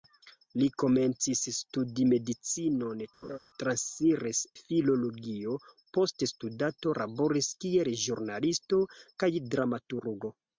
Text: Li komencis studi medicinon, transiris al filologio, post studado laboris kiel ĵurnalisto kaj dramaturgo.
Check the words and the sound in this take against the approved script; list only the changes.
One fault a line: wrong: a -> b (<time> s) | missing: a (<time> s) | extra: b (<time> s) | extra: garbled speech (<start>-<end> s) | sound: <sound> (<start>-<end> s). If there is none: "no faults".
sound: laugh (3.2-3.4 s)
missing: al (4.4 s)